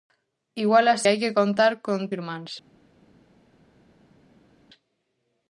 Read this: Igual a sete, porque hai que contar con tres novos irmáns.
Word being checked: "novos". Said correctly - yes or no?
no